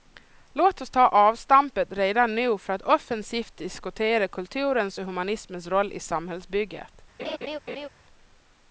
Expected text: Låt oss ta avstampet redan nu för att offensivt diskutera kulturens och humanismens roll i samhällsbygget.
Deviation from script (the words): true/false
false